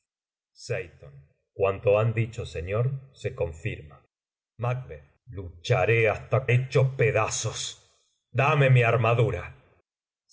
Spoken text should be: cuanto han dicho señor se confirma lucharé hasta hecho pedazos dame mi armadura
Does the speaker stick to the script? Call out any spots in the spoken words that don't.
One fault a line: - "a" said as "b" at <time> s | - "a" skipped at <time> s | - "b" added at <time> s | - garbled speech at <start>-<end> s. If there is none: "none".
none